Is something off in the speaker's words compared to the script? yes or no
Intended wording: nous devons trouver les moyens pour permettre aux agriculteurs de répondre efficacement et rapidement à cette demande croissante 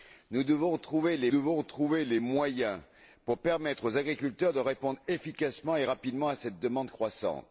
yes